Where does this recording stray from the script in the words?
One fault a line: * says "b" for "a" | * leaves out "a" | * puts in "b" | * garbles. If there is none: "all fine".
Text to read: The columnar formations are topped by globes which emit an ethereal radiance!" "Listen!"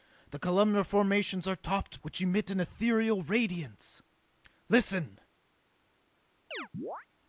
* leaves out "by globes"